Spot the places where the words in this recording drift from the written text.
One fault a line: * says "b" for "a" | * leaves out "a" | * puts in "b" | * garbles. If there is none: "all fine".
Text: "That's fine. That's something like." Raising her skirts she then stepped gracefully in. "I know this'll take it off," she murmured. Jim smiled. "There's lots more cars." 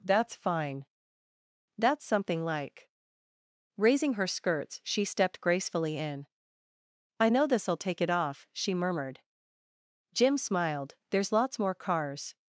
* leaves out "then"